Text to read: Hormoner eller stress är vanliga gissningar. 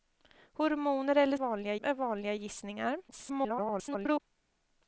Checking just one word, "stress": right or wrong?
wrong